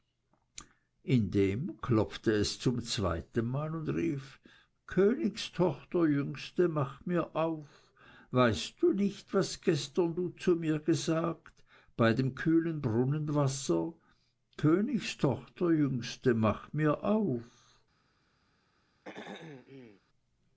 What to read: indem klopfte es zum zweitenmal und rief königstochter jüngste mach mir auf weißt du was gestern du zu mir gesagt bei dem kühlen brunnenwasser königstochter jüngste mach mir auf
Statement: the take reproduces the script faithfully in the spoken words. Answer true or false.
false